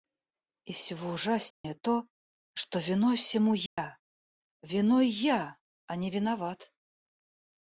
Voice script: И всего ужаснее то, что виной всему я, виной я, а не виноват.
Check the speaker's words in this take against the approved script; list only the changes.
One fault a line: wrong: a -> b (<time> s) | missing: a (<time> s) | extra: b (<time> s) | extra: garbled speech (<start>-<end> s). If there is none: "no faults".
no faults